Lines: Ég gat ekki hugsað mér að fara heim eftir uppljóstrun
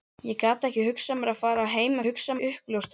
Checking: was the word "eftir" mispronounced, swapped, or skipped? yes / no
yes